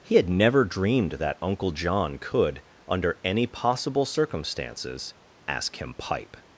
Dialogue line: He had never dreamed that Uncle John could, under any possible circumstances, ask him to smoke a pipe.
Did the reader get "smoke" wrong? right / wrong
wrong